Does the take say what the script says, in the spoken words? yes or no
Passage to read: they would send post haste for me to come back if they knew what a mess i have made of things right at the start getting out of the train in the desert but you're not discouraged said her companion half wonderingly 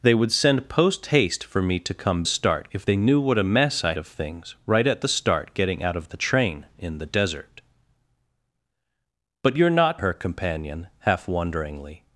no